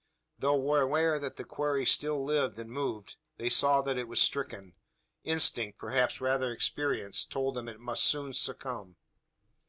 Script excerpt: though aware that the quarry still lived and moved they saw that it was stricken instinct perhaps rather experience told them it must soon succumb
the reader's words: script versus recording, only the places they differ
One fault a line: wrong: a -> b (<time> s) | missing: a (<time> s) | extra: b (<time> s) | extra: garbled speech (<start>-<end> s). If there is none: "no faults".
no faults